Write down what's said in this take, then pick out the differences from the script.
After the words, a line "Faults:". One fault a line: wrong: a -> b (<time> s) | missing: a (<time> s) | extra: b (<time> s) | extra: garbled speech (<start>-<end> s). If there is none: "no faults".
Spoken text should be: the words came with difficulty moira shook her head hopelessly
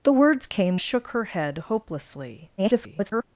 the words came shook her head hopelessly [garbled]
Faults:
missing: with difficulty moira (0.8 s)
extra: garbled speech (2.6-3.2 s)